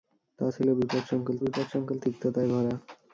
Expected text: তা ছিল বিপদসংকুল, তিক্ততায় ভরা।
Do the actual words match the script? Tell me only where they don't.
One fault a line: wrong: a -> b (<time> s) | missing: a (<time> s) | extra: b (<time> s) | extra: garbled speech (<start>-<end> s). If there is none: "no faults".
extra: বিপদসংকুল (1.4 s)